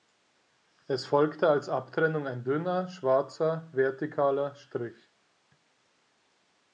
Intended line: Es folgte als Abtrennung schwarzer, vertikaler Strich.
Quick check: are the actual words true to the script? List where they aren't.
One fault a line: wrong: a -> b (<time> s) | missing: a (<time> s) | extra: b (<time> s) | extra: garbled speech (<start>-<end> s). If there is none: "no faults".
extra: ein dünner (2.3 s)